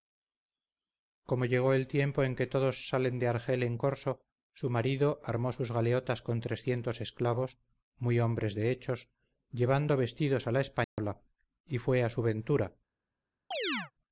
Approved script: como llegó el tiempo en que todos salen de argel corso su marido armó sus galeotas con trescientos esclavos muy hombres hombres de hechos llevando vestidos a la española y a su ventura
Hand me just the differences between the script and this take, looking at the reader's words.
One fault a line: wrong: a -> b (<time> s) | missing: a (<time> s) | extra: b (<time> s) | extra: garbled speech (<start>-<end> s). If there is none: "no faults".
extra: en (3.6 s)
missing: hombres (8.5 s)
extra: fue (11.8 s)